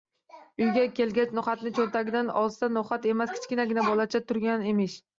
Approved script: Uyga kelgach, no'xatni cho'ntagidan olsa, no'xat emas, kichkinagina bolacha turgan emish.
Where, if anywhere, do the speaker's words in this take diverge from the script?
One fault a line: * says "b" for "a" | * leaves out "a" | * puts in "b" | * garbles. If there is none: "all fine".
all fine